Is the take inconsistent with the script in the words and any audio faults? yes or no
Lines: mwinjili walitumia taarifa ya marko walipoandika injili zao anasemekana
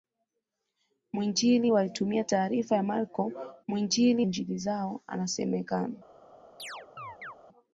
yes